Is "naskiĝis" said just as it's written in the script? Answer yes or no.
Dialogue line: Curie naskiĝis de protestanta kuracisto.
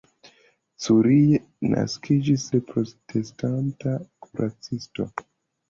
yes